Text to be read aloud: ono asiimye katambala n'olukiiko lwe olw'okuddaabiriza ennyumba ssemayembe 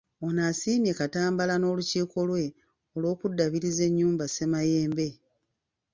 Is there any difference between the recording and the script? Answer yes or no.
no